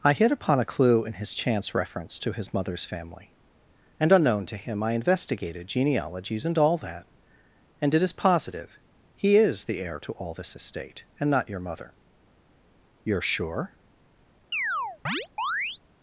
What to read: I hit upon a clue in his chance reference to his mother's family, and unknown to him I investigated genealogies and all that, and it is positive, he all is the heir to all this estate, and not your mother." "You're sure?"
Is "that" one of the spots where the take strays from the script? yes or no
no